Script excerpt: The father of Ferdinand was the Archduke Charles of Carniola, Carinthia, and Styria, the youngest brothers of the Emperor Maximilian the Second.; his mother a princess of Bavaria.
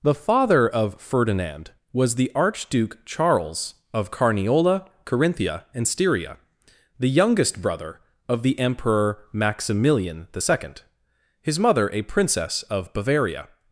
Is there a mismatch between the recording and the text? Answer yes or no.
yes